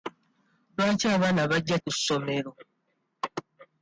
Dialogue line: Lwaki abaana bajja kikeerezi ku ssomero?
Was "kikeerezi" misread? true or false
true